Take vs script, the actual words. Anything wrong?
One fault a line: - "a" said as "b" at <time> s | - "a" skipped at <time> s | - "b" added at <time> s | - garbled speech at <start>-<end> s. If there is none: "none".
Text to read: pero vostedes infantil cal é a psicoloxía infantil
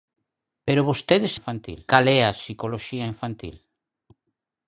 none